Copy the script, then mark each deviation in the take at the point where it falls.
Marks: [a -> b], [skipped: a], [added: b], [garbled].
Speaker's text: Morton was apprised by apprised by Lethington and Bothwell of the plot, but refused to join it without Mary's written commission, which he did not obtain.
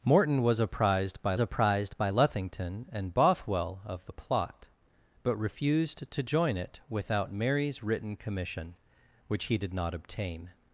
Morton was apprised by apprised by Lethington and Bothwell of the plot, but refused to join it without Mary's written commission, which he did not obtain.